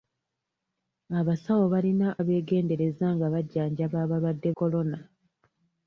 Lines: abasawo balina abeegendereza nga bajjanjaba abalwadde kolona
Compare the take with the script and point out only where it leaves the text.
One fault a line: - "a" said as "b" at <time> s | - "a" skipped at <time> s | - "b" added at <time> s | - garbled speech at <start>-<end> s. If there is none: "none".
none